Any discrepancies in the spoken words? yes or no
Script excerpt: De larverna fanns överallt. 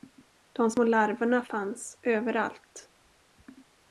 yes